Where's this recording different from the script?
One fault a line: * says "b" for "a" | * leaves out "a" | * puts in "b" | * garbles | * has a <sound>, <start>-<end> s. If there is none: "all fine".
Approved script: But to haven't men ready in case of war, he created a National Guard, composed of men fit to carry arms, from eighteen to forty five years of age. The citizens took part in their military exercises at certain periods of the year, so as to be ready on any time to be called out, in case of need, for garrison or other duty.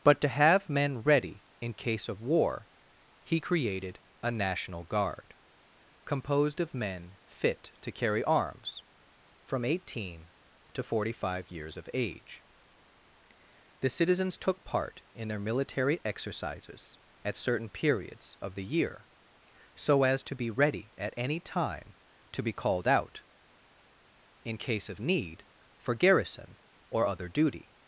* says "have" for "haven't"
* says "at" for "on"